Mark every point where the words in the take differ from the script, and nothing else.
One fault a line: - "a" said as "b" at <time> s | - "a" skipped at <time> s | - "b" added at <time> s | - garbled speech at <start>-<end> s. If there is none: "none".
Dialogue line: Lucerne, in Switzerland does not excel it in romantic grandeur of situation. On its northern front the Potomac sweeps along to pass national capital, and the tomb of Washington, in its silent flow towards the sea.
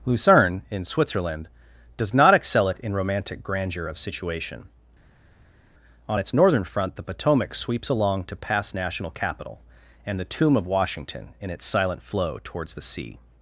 none